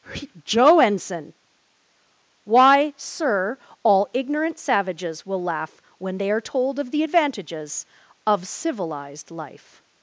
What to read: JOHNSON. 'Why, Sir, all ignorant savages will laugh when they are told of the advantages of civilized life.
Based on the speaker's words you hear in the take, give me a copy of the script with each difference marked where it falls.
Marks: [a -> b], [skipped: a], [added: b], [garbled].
[JOHNSON. -> Joe ensign] 'Why, Sir, all ignorant savages will laugh when they are told of the advantages of civilized life.